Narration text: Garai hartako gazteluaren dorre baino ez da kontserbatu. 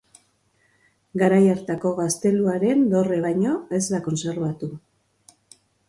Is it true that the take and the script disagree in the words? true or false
false